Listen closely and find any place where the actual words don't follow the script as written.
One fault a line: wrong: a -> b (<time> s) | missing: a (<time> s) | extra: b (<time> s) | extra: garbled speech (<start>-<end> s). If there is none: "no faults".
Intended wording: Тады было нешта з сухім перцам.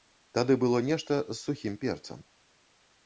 no faults